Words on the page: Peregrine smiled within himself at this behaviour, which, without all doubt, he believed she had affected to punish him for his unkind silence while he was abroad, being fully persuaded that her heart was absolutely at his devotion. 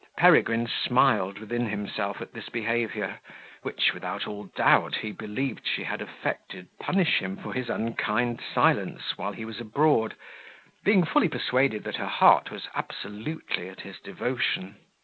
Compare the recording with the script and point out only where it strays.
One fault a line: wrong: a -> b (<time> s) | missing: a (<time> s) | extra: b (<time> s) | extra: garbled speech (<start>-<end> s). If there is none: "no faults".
missing: to (6.7 s)